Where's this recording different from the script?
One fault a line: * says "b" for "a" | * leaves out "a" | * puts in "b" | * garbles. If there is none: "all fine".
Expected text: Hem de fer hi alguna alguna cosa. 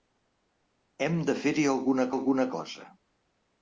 all fine